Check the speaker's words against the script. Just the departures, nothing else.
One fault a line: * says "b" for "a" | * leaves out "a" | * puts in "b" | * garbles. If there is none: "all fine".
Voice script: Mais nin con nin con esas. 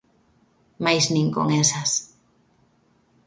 * leaves out "nin con"